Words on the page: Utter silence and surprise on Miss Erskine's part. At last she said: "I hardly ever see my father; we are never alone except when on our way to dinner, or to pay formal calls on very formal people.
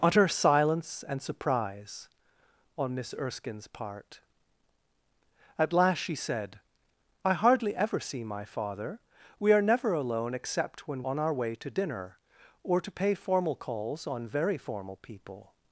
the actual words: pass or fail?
pass